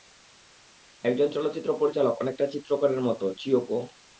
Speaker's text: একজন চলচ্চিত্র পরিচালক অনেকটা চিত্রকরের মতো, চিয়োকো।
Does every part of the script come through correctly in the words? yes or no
yes